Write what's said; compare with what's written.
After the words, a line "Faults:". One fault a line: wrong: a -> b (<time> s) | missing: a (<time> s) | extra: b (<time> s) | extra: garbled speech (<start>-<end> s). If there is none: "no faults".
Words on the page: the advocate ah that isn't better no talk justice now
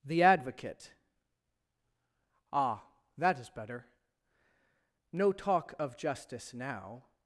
the advocate ah that is better no talk of justice now
Faults:
wrong: isn't -> is (3.4 s)
extra: of (5.8 s)